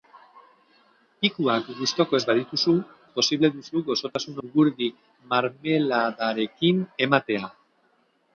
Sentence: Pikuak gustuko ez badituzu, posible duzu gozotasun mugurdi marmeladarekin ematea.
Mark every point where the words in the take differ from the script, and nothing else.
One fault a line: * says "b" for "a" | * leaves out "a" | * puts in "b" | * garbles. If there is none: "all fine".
all fine